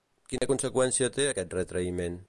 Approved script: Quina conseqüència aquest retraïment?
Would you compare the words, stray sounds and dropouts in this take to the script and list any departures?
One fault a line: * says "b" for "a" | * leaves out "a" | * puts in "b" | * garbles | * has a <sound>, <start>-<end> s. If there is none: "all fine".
* has a dropout, 0.4-0.4 s
* puts in "té"